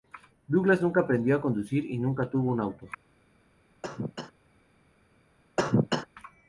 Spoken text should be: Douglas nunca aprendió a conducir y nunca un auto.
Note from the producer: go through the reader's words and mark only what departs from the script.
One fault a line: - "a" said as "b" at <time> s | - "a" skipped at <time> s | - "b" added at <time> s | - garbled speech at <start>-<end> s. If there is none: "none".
- "tuvo" added at 2.3 s